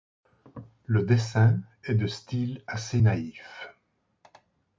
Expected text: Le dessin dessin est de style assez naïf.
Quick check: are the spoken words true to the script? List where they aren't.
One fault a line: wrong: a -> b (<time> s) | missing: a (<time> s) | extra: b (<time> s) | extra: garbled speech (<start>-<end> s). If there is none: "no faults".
missing: dessin (1.6 s)